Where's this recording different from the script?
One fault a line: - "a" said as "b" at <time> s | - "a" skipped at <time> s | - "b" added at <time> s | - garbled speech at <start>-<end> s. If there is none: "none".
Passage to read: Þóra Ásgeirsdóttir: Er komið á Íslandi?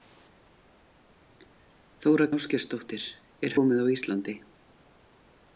none